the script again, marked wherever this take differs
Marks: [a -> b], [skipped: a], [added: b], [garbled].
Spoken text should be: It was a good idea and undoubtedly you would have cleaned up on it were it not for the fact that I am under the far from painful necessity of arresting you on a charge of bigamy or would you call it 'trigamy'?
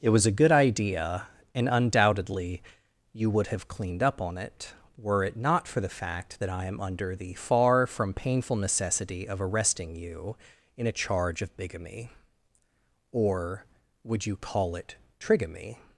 It was a good idea and undoubtedly you would have cleaned up on it were it not for the fact that I am under the far from painful necessity of arresting you [on -> in] a charge of bigamy or would you call it 'trigamy'?